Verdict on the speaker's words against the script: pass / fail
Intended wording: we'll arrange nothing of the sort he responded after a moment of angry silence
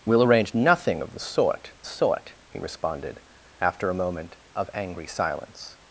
fail